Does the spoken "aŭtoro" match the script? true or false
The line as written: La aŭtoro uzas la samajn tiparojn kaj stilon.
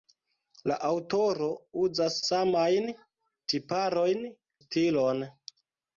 true